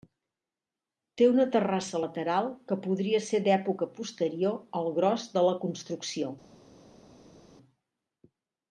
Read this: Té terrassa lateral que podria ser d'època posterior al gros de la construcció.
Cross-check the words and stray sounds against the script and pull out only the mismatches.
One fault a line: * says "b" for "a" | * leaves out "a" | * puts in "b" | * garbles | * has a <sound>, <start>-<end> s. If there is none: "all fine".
* puts in "una"